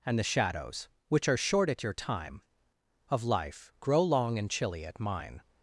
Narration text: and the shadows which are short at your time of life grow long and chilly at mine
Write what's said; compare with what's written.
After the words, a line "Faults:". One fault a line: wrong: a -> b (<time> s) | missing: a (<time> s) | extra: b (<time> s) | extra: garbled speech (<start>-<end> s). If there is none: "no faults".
and the shadows which are short at your time of life grow long and chilly at mine
Faults:
no faults